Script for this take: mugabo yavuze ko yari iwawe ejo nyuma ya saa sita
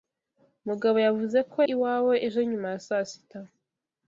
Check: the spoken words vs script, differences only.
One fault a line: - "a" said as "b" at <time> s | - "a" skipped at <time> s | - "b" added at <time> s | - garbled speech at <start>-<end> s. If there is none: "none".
- "yari" skipped at 1.6 s